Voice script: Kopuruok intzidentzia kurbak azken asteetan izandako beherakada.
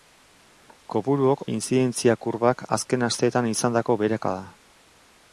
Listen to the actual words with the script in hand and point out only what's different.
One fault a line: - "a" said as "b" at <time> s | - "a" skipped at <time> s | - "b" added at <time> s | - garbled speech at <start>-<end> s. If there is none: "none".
none